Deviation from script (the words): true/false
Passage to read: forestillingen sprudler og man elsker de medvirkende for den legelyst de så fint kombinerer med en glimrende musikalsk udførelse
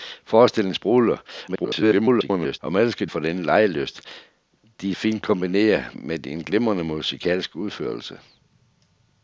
true